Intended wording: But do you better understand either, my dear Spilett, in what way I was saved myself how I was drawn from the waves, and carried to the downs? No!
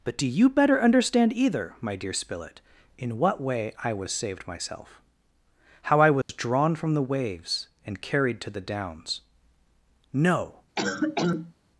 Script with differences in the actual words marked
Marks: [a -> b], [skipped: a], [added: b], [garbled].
But do you better understand either, my dear Spilett, in what way I was saved myself how I was drawn from the waves, and carried to the downs? No!